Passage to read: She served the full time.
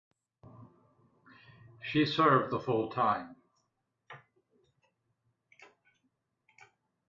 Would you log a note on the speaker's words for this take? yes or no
no